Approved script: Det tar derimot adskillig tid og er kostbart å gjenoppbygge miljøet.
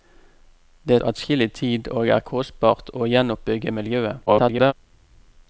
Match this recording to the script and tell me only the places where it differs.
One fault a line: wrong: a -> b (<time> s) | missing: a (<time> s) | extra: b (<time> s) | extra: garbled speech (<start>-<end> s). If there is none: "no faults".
missing: tar derimot (1.0 s)
extra: garbled speech (4.3-4.7 s)